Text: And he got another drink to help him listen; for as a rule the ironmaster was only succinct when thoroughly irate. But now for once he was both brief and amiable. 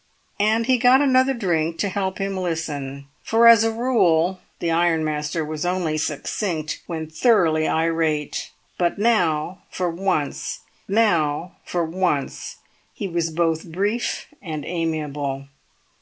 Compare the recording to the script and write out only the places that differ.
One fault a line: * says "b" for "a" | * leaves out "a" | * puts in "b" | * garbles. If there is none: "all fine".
* puts in "now for once"